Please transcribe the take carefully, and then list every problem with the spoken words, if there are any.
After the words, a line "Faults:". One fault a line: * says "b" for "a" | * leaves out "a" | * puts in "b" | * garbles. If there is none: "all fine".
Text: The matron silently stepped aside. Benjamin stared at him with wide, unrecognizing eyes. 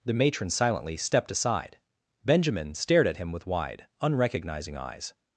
The matron silently stepped aside. Benjamin stared at him with wide, unrecognizing eyes.
Faults:
all fine